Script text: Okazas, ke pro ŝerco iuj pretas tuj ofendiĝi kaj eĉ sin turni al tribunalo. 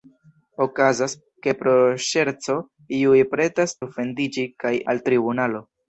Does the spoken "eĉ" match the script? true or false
false